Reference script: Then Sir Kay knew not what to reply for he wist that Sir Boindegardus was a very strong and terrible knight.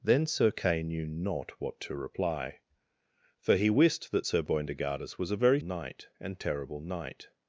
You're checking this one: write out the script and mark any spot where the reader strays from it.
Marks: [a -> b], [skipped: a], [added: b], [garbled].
Then Sir Kay knew not what to reply for he wist that Sir Boindegardus was a very [strong -> knight] and terrible knight.